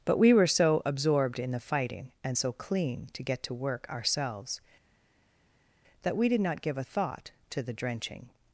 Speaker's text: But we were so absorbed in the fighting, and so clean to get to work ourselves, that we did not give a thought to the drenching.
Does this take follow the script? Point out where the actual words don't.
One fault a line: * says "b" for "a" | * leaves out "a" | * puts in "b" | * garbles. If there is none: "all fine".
all fine